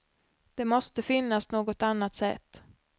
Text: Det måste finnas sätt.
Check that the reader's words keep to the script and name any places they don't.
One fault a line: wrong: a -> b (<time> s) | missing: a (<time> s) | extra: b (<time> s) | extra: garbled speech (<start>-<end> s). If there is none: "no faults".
extra: något annat (1.5 s)